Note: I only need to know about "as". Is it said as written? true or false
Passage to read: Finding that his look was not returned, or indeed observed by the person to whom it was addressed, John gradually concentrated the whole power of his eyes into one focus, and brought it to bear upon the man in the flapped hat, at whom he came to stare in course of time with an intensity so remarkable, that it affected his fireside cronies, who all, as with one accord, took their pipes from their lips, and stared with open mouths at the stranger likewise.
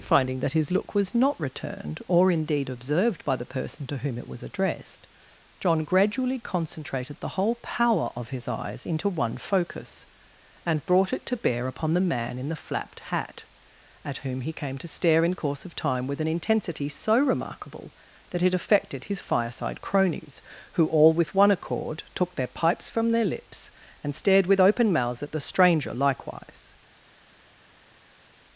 false